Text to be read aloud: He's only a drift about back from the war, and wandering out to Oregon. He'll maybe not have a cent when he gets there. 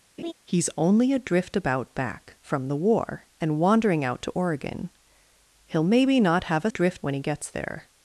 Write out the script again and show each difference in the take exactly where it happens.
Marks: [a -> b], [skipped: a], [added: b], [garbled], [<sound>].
[laugh] He's only a drift about back from the war, and wandering out to Oregon. He'll maybe not have a [cent -> drift] when he gets there.